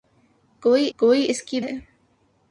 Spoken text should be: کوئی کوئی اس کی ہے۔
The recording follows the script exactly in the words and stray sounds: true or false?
true